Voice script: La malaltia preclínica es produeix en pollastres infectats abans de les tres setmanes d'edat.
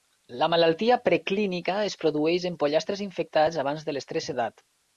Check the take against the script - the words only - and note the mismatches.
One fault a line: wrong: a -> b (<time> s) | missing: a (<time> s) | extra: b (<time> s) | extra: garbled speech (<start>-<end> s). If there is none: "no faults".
missing: setmanes (4.3 s)